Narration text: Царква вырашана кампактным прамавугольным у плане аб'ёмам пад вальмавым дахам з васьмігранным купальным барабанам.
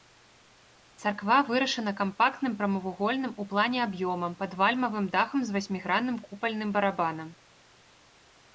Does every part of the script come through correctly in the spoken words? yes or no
yes